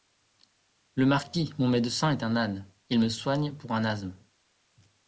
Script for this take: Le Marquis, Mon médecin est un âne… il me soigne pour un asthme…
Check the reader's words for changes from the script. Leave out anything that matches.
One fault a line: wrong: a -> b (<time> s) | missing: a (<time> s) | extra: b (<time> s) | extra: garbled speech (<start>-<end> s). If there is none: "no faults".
no faults